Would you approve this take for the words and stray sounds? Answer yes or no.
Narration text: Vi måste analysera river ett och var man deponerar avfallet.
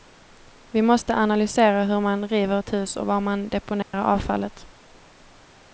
no